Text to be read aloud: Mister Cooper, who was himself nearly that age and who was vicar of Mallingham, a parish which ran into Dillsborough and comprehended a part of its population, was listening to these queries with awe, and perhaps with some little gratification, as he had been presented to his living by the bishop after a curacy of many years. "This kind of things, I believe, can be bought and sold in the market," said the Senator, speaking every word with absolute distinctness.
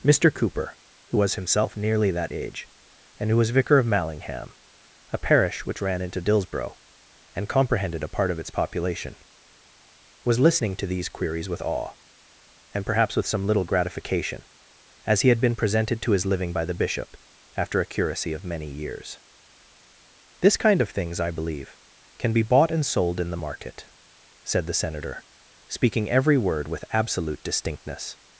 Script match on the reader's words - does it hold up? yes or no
yes